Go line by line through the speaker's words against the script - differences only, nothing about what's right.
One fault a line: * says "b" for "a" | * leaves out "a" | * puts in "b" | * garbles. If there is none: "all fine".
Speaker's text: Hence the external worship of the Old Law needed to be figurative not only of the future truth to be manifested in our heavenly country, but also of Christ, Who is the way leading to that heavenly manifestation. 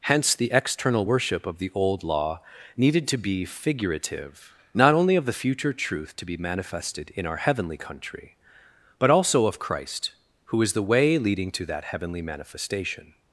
all fine